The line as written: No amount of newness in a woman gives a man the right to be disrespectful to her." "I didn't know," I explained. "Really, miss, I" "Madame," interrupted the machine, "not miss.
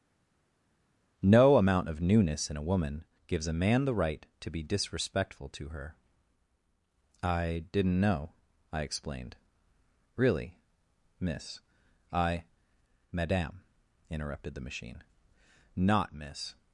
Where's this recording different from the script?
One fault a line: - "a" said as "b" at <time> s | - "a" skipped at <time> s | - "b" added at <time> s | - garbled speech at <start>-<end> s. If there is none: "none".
none